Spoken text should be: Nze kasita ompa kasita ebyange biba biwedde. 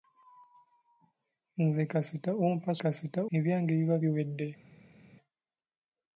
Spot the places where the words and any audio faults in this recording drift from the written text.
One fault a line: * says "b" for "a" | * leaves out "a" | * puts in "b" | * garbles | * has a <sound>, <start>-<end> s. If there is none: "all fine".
all fine